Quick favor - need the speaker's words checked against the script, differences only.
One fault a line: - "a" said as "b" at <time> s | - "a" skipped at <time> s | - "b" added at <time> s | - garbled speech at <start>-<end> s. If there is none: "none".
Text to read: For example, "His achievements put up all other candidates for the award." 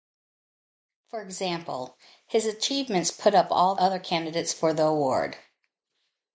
none